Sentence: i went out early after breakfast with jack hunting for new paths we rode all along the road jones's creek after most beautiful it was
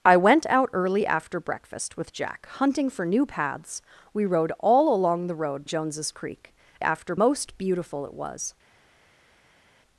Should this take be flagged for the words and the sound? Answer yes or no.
no